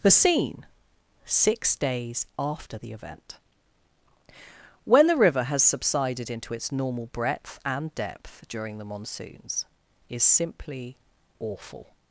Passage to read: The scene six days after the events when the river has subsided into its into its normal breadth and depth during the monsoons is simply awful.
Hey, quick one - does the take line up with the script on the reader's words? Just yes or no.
no